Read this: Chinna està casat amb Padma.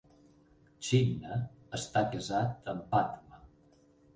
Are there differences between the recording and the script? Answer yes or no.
no